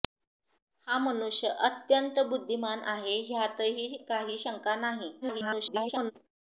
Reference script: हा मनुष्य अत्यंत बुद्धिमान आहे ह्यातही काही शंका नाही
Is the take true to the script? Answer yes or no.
no